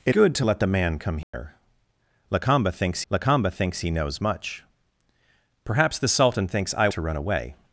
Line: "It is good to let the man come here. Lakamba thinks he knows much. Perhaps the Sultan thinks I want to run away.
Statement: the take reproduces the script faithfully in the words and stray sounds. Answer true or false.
false